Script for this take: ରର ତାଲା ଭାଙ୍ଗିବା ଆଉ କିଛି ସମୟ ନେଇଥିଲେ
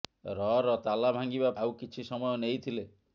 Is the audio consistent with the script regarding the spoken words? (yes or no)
yes